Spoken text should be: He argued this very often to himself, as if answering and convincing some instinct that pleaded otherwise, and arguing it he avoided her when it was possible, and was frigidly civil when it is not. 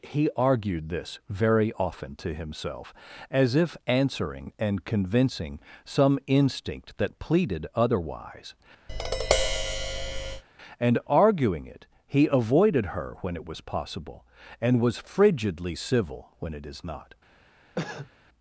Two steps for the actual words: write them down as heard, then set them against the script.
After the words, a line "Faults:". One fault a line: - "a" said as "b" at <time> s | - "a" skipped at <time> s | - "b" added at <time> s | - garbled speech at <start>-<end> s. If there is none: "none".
He argued this very often to himself, as if answering and convincing some instinct that pleaded otherwise, and arguing it he avoided her when it was possible, and was frigidly civil when it is not.
Faults:
none